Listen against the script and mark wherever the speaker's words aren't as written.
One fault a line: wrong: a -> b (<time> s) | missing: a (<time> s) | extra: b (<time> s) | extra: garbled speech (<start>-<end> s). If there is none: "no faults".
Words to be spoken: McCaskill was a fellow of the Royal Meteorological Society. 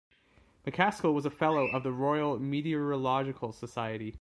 no faults